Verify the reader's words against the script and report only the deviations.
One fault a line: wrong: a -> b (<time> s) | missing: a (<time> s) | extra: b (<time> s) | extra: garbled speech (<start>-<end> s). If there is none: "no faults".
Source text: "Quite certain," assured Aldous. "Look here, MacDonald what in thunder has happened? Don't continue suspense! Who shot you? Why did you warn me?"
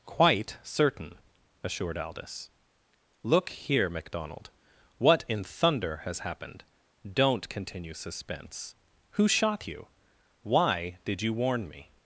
no faults